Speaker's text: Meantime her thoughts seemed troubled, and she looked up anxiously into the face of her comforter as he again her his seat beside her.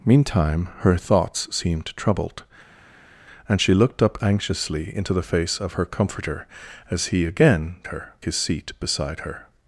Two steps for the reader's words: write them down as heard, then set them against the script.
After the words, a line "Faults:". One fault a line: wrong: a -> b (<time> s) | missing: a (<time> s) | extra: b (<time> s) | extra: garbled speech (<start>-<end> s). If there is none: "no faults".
Meantime her thoughts seemed troubled, and she looked up anxiously into the face of her comforter as he again her his seat beside her.
Faults:
no faults